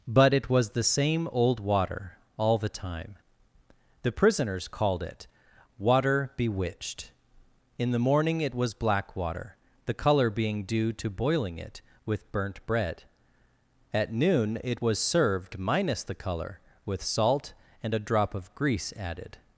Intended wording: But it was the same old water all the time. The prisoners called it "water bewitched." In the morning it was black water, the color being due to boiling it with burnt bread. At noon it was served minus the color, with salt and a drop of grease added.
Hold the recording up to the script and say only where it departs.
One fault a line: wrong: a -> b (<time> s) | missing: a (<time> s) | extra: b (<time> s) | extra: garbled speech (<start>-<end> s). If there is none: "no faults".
no faults